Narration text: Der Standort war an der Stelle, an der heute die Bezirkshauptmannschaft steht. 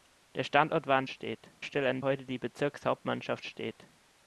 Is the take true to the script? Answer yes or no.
no